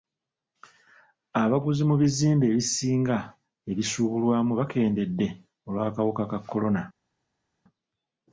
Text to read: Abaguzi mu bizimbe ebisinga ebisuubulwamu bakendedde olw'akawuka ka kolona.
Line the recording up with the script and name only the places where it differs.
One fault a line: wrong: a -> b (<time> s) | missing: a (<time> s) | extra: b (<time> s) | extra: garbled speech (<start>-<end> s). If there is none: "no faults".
no faults